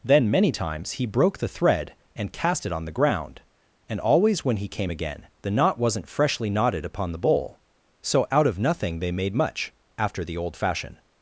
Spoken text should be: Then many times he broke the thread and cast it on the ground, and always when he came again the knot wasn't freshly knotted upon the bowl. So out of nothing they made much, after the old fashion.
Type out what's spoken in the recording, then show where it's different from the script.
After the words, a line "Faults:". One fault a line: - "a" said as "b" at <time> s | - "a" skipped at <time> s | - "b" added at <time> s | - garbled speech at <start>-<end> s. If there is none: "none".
Then many times he broke the thread and cast it on the ground, and always when he came again the knot wasn't freshly knotted upon the bowl. So out of nothing they made much, after the old fashion.
Faults:
none